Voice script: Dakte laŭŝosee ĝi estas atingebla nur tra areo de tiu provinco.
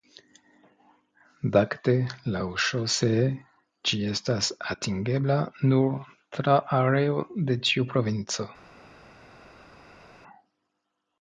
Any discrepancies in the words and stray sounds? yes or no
no